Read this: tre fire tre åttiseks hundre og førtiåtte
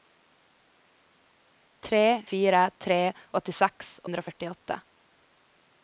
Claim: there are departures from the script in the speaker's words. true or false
false